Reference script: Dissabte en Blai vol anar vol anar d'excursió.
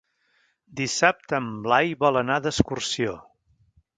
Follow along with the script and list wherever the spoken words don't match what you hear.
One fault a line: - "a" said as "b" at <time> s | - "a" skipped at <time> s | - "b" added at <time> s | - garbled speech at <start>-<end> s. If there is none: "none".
- "vol anar" skipped at 2.4 s